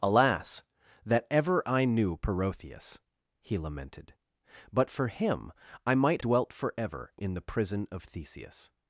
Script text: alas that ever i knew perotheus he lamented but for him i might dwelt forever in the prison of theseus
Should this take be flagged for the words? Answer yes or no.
no